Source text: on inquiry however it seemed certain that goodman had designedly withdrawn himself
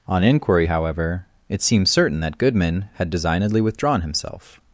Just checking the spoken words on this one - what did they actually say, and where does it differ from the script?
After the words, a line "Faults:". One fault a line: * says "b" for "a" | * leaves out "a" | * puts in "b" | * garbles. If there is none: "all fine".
on inquiry however it seemed certain that goodman had designedly withdrawn himself
Faults:
all fine